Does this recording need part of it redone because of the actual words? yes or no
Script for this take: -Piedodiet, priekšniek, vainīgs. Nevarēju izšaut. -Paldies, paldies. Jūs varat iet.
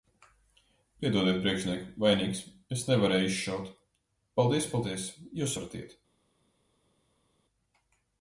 yes